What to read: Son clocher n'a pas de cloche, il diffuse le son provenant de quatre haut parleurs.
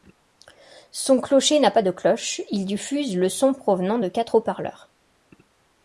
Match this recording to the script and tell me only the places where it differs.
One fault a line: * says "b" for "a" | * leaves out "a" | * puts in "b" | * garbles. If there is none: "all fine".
all fine